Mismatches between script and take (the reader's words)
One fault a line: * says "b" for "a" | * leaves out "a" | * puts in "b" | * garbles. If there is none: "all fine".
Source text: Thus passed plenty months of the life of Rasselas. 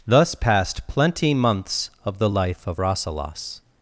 all fine